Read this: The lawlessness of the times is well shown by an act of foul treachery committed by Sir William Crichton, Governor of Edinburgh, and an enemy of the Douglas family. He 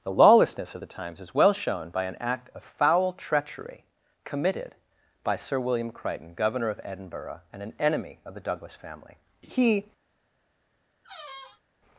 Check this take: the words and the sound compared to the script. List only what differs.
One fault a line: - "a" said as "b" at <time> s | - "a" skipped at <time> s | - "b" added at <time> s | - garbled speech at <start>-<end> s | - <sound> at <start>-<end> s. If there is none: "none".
- squeak at 11.0-11.6 s